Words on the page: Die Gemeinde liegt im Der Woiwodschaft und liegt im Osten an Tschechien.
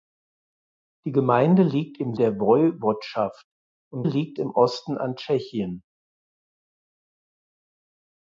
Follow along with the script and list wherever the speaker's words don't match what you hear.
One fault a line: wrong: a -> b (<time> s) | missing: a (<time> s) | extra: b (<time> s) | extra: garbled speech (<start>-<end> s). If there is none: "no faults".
no faults